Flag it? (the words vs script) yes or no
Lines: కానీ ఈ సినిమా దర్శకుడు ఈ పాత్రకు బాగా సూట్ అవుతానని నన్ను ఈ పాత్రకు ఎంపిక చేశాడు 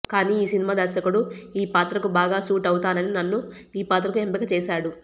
no